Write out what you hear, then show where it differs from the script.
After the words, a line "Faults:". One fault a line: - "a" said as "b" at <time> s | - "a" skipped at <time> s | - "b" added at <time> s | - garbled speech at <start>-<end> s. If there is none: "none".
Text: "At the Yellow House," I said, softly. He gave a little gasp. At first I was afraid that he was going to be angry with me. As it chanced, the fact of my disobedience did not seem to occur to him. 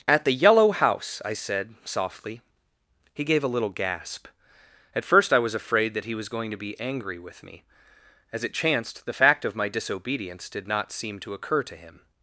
"At the Yellow House," I said, softly. He gave a little gasp. At first I was afraid that he was going to be angry with me. As it chanced, the fact of my disobedience did not seem to occur to him.
Faults:
none